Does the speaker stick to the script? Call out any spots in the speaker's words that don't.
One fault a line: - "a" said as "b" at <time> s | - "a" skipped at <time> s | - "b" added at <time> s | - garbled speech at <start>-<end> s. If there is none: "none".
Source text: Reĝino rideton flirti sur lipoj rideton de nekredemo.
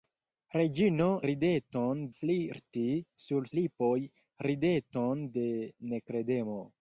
none